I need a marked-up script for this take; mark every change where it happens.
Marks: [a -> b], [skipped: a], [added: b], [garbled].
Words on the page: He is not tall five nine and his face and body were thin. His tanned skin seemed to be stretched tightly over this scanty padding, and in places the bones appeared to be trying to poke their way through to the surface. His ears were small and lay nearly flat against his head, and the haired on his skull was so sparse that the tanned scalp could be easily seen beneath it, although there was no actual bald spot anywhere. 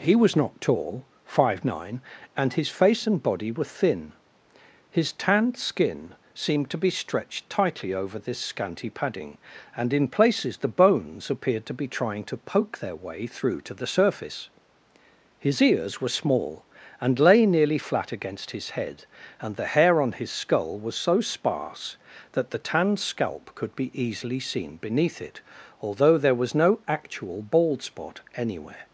He [is -> was] not tall five nine and his face and body were thin. His tanned skin seemed to be stretched tightly over this scanty padding, and in places the bones appeared to be trying to poke their way through to the surface. His ears were small and lay nearly flat against his head, and the [haired -> hair] on his skull was so sparse that the tanned scalp could be easily seen beneath it, although there was no actual bald spot anywhere.